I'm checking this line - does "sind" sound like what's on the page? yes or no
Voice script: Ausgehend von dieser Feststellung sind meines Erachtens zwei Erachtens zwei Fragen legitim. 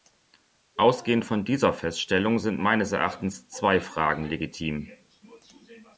yes